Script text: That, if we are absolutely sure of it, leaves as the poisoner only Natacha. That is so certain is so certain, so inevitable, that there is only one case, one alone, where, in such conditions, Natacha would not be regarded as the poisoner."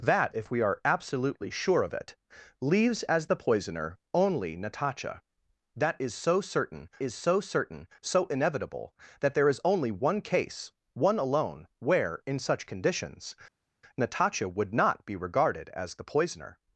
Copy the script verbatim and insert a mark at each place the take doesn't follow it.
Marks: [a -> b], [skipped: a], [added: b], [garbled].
That, if we are absolutely sure of it, leaves as the poisoner only Natacha. That is so certain is so certain, so inevitable, that there is only one case, one alone, where, in such conditions, Natacha would not be regarded as the poisoner."